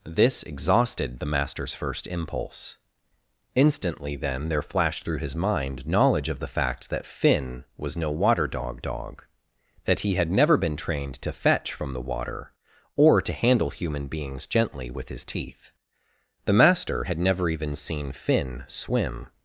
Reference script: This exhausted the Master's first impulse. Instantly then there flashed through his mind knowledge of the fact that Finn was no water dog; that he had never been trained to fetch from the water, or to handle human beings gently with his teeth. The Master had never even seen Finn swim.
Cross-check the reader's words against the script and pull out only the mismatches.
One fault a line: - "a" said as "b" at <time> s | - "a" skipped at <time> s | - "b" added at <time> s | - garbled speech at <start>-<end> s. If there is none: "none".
- "dog" added at 8.8 s